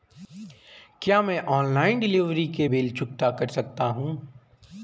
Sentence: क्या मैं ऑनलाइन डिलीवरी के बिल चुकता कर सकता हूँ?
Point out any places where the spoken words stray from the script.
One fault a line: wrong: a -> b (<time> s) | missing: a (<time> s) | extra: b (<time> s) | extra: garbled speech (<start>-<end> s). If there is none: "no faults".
no faults